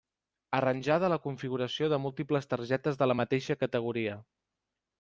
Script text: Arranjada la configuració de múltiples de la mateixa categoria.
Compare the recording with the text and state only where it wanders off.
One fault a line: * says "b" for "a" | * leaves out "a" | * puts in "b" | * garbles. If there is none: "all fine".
* puts in "targetes"